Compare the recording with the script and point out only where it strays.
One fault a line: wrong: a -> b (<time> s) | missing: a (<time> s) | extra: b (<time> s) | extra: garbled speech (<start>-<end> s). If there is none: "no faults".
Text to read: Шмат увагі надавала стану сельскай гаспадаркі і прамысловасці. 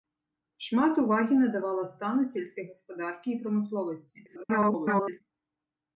extra: garbled speech (4.2-5.2 s)